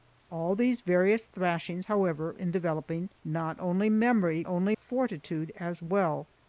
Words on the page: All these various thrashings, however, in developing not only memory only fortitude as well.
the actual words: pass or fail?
pass